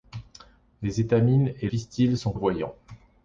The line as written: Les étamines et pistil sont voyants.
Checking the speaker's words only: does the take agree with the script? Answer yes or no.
yes